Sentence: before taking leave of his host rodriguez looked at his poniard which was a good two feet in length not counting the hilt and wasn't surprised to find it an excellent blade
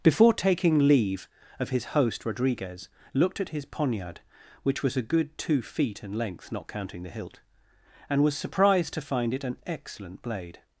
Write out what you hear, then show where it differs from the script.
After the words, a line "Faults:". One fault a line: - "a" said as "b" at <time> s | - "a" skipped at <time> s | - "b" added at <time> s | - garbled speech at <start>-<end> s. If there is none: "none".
before taking leave of his host rodriguez looked at his poniard which was a good two feet in length not counting the hilt and was surprised to find it an excellent blade
Faults:
- "wasn't" said as "was" at 8.2 s